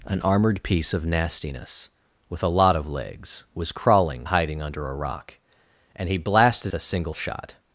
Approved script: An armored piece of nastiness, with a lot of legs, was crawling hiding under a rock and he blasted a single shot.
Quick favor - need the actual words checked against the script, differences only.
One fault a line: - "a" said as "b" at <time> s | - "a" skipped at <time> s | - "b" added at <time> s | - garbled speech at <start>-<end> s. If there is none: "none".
none